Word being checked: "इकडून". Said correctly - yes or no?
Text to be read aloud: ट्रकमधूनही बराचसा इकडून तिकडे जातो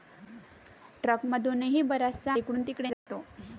yes